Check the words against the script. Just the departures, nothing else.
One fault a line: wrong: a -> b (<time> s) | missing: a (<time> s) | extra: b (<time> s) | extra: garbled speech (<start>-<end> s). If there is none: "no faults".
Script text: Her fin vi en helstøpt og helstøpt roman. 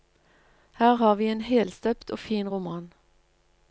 wrong: fin -> har (0.9 s)
wrong: helstøpt -> fin (2.2 s)